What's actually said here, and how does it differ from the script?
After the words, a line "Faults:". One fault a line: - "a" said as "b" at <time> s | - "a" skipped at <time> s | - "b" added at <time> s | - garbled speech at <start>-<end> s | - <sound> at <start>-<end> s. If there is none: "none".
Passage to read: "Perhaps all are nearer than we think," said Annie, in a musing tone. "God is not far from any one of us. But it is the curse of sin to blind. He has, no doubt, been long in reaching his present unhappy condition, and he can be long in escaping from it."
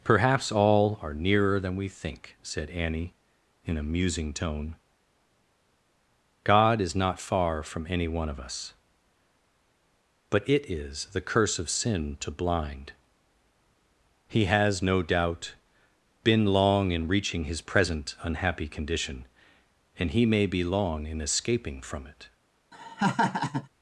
"Perhaps all are nearer than we think," said Annie, in a musing tone. "God is not far from any one of us. But it is the curse of sin to blind. He has, no doubt, been long in reaching his present unhappy condition, and he may be long in escaping from it."
Faults:
- "can" said as "may" at 20.2 s
- laugh at 22.7-23.7 s